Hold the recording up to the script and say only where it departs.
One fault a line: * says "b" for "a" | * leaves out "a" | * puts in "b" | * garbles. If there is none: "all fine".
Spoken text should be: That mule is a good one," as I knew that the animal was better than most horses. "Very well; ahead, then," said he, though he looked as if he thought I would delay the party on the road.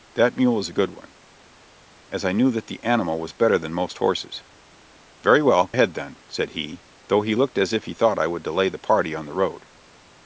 all fine